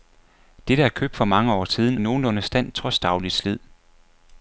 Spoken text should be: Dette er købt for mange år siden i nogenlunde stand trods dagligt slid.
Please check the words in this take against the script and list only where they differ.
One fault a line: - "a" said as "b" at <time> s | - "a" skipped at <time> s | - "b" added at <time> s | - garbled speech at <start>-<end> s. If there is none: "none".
none